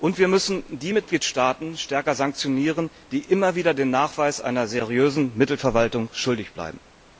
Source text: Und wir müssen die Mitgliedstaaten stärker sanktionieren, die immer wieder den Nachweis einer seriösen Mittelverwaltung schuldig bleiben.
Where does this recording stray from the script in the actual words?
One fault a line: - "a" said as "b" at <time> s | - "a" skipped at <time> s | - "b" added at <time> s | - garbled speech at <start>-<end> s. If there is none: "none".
none